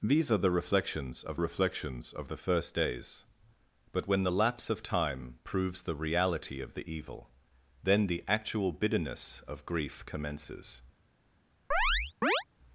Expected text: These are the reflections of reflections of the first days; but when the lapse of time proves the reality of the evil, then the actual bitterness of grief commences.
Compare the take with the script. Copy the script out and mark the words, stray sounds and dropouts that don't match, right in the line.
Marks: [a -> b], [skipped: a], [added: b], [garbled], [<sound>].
These are the reflections of reflections of the first days; but when the lapse of time proves the reality of the evil, then the actual bitterness of grief commences. [chirp]